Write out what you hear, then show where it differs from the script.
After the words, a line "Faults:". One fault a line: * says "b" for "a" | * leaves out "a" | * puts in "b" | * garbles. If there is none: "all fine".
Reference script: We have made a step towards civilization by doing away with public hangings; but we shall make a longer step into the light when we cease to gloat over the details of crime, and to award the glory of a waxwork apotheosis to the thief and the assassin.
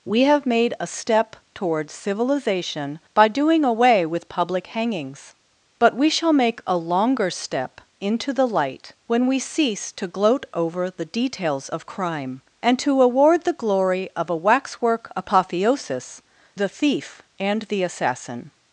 We have made a step towards civilization by doing away with public hangings; but we shall make a longer step into the light when we cease to gloat over the details of crime, and to award the glory of a waxwork apotheosis the thief and the assassin.
Faults:
* leaves out "to"